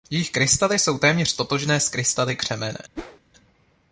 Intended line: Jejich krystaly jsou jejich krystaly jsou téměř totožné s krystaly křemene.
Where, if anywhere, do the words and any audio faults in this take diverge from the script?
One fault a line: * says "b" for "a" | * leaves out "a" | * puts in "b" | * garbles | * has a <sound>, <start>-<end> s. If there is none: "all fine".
* leaves out "jejich krystaly jsou"
* has a whoosh, 3.0-3.2 s